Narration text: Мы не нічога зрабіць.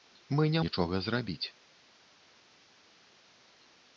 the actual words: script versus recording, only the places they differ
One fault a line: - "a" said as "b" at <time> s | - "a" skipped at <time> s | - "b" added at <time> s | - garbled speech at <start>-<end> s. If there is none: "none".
none